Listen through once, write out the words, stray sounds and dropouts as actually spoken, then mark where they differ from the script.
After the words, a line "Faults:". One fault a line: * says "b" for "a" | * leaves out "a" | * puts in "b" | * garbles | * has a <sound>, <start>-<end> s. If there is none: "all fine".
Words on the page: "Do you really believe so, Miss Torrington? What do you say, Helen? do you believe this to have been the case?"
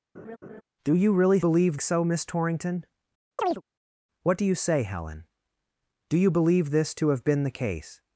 "Do you really believe so, Miss Torrington? What do you say, Helen? do you believe this to have been the case?"
Faults:
* has a laugh, 0.1-0.6 s
* has a chirp, 3.4-3.6 s